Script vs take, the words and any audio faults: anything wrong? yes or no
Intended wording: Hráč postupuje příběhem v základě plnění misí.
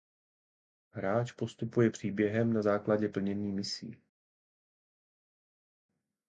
yes